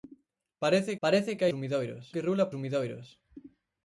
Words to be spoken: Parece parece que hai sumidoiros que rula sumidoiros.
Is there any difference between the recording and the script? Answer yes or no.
no